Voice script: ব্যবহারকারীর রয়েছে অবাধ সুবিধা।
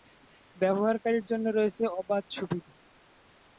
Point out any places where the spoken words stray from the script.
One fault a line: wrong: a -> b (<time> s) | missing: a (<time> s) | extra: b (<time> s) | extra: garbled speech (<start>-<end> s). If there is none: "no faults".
extra: জন্য (1.2 s)